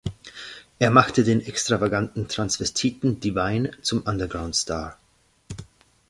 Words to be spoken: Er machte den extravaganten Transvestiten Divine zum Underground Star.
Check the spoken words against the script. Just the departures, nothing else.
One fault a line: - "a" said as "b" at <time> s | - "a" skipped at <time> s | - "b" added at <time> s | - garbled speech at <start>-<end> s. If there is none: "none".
none